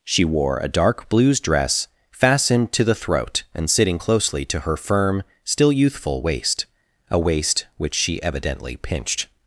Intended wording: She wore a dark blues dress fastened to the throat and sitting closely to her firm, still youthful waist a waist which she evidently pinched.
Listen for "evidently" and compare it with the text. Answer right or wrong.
right